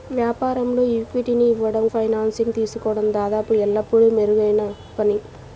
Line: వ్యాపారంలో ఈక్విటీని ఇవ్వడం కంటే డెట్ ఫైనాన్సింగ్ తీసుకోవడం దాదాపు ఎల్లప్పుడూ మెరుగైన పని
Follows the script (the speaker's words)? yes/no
no